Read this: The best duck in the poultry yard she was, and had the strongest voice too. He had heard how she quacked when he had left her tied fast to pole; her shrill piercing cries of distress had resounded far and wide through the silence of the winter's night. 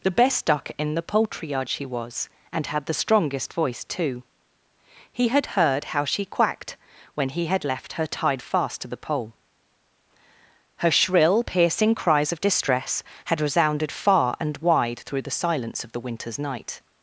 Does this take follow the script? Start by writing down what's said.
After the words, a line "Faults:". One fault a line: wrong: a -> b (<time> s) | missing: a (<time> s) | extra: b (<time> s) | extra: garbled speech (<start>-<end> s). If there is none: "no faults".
The best duck in the poultry yard she was, and had the strongest voice too. He had heard how she quacked when he had left her tied fast to the pole; her shrill piercing cries of distress had resounded far and wide through the silence of the winter's night.
Faults:
extra: the (8.9 s)